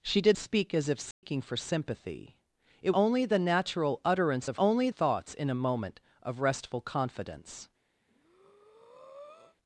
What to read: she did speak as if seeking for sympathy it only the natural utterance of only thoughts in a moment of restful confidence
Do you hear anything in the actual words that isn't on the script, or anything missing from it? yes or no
no